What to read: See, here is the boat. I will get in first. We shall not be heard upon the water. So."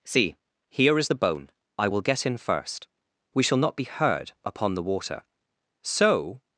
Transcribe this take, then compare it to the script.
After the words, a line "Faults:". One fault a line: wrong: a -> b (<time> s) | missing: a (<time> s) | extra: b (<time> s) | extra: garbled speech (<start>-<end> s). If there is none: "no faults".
See, here is the bone. I will get in first. We shall not be heard upon the water. So."
Faults:
wrong: boat -> bone (1.1 s)